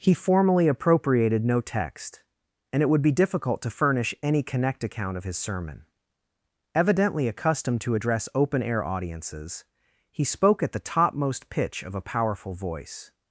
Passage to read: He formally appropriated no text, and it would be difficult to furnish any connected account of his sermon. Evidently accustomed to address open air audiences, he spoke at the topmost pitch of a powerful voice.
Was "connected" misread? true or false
true